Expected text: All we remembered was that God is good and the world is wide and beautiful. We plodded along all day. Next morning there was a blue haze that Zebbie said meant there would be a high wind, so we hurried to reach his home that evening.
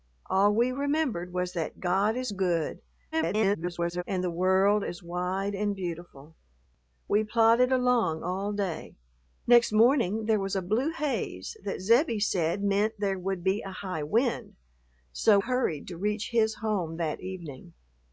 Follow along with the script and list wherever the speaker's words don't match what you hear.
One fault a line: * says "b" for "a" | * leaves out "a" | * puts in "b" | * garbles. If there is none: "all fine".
* garbles
* leaves out "we"